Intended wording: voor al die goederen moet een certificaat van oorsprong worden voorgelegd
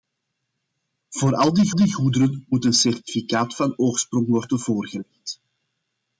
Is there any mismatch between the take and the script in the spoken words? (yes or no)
yes